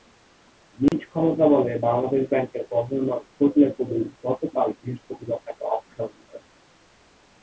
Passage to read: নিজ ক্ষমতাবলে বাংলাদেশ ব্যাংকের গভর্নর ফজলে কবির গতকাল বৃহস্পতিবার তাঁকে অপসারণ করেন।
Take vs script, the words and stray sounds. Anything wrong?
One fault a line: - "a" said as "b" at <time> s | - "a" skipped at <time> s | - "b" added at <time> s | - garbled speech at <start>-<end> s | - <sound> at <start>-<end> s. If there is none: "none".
- dropout at 0.9-0.9 s